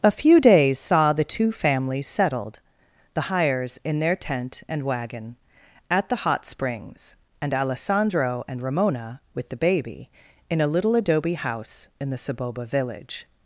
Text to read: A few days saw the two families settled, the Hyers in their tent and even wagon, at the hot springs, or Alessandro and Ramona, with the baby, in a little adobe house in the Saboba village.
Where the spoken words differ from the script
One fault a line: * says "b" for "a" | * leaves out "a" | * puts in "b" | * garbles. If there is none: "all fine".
* leaves out "even"
* says "and" for "or"